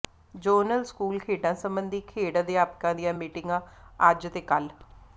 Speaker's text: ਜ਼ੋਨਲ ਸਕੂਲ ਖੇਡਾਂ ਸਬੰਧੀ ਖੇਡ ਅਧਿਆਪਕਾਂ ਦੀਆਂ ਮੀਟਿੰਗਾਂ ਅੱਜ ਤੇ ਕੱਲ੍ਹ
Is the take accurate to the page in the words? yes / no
yes